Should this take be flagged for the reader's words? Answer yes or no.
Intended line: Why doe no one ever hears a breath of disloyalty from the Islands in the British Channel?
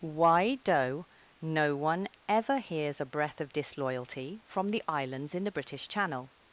no